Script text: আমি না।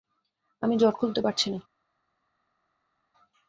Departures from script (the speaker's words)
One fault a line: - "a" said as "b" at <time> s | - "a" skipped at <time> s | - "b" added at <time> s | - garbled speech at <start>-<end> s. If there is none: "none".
- "জট খুলতে পারছি" added at 0.7 s